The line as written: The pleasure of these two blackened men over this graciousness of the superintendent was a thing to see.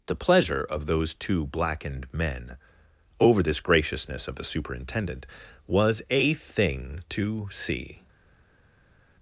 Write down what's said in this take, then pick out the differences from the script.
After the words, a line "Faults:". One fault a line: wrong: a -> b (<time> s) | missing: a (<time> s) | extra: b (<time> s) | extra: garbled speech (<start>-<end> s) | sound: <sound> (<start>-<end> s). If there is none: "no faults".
The pleasure of those two blackened men over this graciousness of the superintendent was a thing to see.
Faults:
wrong: these -> those (0.9 s)